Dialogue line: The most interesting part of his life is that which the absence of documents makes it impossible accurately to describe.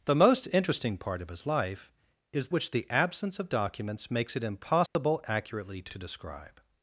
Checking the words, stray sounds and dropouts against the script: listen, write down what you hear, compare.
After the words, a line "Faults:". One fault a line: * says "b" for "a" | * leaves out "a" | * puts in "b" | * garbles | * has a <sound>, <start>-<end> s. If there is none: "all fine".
The most interesting part of his life is which the absence of documents makes it impossible accurately to to describe.
Faults:
* leaves out "that"
* has a dropout, 4.9-5.0 s
* puts in "to"